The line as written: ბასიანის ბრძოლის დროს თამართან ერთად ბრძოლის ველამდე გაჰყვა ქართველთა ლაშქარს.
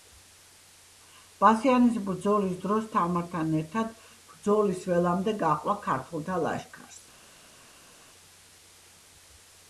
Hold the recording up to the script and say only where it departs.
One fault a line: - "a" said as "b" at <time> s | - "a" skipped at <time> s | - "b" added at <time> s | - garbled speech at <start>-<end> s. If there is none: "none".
none